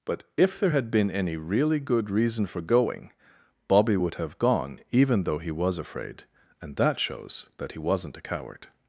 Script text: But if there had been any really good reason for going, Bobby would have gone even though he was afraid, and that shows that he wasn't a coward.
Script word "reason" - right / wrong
right